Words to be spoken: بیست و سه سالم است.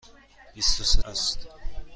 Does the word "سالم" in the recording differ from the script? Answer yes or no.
yes